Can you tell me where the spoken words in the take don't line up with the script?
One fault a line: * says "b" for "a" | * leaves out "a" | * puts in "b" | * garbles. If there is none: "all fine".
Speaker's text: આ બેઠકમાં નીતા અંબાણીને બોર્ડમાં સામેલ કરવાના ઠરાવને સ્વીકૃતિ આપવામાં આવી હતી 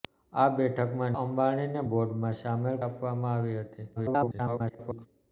* leaves out "નીતા"
* leaves out "કરવાના ઠરાવને સ્વીકૃતિ"
* garbles